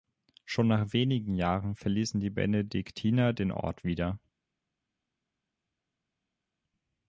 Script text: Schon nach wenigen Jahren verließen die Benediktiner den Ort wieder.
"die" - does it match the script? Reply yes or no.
yes